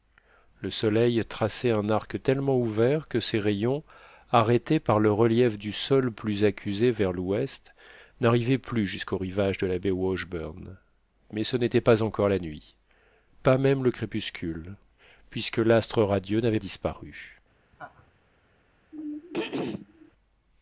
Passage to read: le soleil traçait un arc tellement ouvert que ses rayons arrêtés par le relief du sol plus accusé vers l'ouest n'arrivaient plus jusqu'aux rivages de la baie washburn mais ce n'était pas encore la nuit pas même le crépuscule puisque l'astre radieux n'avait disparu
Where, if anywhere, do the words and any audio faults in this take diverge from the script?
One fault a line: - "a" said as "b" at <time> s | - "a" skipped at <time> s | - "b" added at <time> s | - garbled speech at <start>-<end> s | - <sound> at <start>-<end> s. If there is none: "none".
- laugh at 17.7-18.1 s
- throat clearing at 18.9-20.1 s